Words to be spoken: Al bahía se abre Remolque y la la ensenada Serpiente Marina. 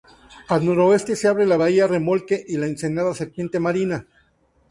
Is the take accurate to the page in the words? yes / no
no